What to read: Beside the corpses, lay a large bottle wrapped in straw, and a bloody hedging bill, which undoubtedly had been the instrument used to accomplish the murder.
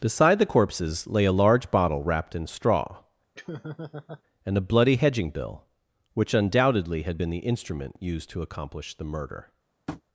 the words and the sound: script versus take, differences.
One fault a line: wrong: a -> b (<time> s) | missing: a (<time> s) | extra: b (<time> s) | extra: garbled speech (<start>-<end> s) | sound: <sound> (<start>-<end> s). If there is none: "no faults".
sound: laugh (3.3-4.2 s)
sound: tap (9.9-10.0 s)